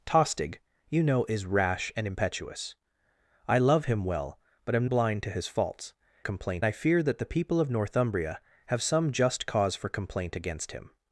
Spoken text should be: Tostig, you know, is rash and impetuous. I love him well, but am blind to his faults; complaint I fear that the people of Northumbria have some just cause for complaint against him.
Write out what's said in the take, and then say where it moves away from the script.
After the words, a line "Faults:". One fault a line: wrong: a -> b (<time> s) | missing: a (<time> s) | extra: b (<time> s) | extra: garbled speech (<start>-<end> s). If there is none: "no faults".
Tostig, you know, is rash and impetuous. I love him well, but am blind to his faults; complaint I fear that the people of Northumbria have some just cause for complaint against him.
Faults:
no faults